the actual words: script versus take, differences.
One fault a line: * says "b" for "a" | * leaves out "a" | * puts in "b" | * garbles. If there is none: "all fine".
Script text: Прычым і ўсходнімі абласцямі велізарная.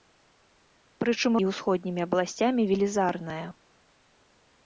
all fine